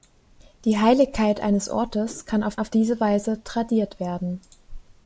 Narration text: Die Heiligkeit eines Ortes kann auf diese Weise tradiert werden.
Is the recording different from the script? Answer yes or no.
yes